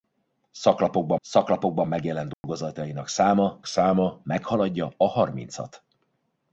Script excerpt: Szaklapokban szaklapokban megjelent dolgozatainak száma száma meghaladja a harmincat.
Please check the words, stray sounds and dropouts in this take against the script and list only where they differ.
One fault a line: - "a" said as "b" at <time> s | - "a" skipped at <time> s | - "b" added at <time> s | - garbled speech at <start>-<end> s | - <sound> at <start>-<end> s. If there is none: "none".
- dropout at 2.3-2.4 s